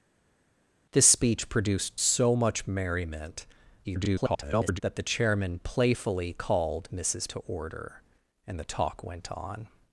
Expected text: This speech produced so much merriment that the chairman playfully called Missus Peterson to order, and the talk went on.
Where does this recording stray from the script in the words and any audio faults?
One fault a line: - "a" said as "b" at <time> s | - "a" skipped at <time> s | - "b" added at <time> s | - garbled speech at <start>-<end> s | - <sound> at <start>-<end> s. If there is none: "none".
- garbled speech at 3.8-4.8 s
- "Peterson" skipped at 7.3 s